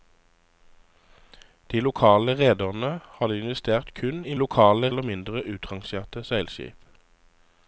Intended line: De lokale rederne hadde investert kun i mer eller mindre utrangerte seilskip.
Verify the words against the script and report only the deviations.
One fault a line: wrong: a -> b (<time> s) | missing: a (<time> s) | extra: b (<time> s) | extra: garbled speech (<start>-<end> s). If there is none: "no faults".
wrong: mer -> lokale (4.4 s)